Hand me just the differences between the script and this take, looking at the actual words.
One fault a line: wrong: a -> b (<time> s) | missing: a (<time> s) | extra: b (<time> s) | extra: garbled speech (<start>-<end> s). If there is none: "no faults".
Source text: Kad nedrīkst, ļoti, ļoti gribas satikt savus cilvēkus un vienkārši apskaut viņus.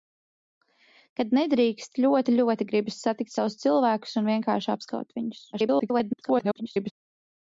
extra: garbled speech (5.5-6.9 s)